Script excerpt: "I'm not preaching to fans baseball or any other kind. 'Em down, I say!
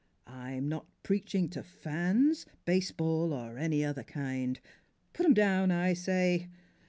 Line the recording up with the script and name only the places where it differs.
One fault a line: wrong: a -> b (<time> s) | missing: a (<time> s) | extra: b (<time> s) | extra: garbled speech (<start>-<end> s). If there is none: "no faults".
extra: Put (5.1 s)